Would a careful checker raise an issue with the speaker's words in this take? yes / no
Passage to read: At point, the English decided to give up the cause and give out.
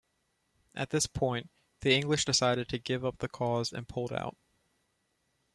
yes